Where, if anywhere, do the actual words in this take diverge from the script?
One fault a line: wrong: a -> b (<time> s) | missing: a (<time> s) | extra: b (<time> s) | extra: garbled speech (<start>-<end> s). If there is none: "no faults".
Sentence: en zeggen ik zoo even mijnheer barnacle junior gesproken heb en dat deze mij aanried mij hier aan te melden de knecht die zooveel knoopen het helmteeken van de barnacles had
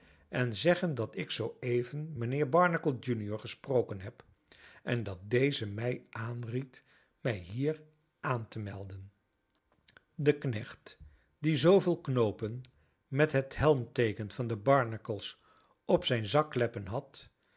extra: dat (0.9 s)
extra: met (13.1 s)
extra: op zijn zakkleppen (15.8 s)